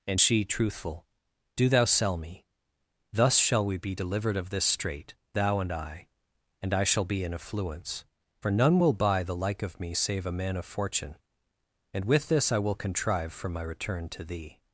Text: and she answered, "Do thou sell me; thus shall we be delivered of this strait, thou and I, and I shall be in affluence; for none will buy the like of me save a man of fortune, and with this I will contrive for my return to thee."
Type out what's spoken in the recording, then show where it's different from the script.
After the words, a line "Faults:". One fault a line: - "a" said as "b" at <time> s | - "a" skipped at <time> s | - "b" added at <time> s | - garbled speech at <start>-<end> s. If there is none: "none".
and she truthful, "Do thou sell me; thus shall we be delivered of this strait, thou and I, and I shall be in affluence; for none will buy the like of me save a man of fortune, and with this I will contrive for my return to thee."
Faults:
- "answered" said as "truthful" at 0.4 s